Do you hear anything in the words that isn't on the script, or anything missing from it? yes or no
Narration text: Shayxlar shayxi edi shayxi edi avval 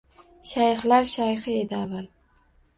yes